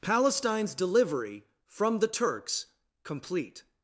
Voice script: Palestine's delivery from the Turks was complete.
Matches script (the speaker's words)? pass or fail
fail